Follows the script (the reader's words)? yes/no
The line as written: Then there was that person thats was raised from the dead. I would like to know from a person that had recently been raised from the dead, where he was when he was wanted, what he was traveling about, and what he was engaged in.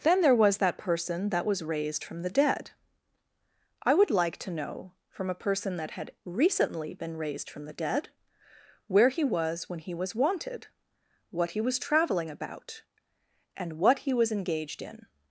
no